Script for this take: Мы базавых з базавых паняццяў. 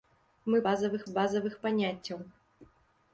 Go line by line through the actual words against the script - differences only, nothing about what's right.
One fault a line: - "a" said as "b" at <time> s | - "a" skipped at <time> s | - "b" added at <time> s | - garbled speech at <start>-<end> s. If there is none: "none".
none